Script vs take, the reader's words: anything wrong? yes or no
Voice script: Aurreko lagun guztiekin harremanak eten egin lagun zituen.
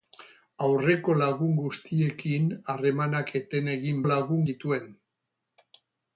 no